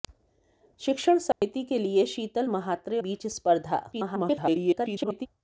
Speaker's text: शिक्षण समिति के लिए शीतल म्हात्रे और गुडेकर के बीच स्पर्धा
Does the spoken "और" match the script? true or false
false